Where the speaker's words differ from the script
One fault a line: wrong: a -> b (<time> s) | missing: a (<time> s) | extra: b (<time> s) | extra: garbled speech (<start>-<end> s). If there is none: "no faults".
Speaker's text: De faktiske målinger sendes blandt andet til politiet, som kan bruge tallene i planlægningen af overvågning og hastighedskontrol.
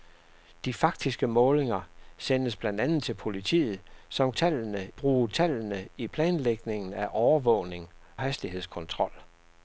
wrong: kan -> tallene (4.3 s)
missing: og (7.9 s)